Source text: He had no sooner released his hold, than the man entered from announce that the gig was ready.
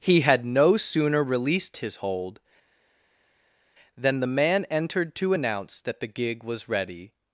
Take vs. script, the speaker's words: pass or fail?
fail